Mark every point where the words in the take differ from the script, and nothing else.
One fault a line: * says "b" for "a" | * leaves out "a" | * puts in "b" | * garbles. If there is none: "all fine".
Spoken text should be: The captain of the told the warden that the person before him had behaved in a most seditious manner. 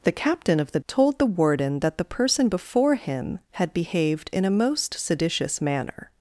all fine